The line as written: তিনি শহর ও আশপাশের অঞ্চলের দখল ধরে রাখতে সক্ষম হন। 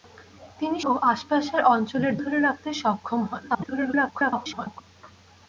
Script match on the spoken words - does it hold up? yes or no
no